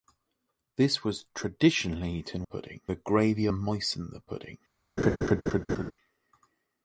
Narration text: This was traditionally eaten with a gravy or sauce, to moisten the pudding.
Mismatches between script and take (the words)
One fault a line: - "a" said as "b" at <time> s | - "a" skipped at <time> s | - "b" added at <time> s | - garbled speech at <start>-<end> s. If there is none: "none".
- "with" said as "pudding" at 2.4 s
- "or sauce to" skipped at 3.5 s